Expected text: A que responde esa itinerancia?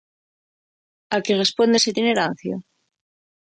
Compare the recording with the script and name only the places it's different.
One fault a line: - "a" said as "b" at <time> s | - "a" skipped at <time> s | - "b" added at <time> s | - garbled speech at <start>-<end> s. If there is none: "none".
none